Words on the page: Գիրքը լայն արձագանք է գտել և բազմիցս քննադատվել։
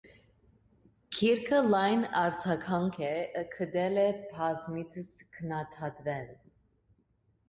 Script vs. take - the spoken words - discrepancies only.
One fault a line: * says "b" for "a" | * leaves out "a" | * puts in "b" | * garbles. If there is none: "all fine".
all fine